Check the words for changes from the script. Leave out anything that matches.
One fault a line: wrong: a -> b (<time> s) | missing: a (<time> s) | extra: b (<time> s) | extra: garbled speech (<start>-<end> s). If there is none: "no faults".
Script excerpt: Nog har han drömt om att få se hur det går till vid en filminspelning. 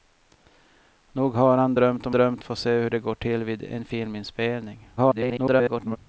wrong: att -> drömt (2.1 s)
extra: garbled speech (5.0-6.0 s)